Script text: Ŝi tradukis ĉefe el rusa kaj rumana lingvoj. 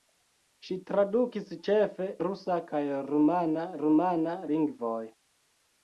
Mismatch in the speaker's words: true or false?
true